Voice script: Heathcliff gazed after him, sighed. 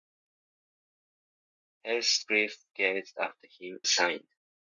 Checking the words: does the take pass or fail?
pass